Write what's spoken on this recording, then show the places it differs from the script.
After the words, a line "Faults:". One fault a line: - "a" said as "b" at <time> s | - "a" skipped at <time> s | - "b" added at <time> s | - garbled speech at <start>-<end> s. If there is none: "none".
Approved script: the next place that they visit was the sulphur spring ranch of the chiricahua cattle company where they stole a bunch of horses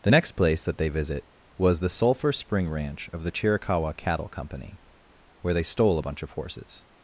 the next place that they visit was the sulphur spring ranch of the chiricahua cattle company where they stole a bunch of horses
Faults:
none